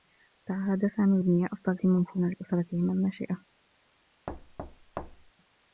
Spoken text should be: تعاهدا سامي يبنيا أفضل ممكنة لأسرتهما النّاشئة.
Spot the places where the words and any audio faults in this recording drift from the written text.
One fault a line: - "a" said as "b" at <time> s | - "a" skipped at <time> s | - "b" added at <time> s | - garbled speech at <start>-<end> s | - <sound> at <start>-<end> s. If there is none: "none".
- thud at 4.3-5.3 s